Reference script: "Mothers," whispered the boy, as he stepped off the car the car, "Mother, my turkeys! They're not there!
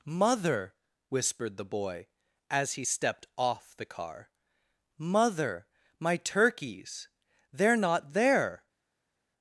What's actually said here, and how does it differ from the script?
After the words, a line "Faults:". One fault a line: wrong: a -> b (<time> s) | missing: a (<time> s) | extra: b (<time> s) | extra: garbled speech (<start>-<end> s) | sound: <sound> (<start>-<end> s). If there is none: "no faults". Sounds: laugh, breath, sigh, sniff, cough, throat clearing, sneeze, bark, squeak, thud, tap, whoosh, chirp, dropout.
"Mother," whispered the boy, as he stepped off the car, "Mother, my turkeys! They're not there!
Faults:
wrong: Mothers -> Mother (0.1 s)
missing: the car (4.3 s)